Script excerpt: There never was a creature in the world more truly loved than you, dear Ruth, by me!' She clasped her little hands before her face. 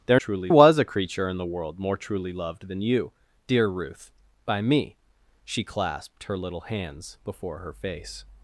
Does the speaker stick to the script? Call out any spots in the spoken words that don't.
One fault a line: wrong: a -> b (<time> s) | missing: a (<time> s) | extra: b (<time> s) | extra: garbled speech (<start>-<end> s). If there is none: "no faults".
wrong: never -> truly (0.1 s)